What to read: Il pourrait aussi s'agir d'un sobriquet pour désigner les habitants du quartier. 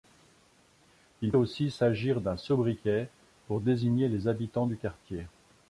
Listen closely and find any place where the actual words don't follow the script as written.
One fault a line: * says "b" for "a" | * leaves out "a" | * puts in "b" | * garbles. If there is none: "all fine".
* leaves out "pourrait"